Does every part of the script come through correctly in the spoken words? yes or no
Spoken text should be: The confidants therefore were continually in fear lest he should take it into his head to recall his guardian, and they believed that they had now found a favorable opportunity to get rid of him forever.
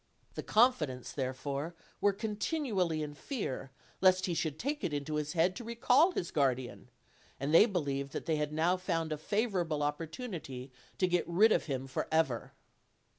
yes